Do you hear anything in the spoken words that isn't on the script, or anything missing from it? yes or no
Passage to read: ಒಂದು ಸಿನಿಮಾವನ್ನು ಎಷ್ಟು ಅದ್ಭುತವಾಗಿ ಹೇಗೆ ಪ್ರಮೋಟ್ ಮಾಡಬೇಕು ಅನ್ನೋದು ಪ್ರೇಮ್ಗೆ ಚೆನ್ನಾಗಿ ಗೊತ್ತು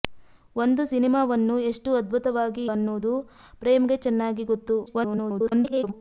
yes